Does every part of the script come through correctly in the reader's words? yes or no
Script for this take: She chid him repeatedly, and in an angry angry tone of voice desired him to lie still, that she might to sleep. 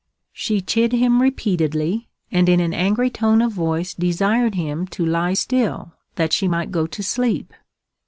no